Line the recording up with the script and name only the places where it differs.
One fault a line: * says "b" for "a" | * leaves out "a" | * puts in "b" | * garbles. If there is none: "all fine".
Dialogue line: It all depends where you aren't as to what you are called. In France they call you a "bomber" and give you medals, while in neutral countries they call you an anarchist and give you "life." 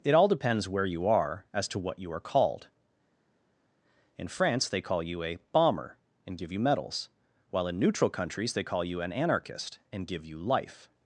* says "are" for "aren't"